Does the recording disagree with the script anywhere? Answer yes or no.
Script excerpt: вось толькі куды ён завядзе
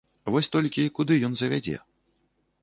no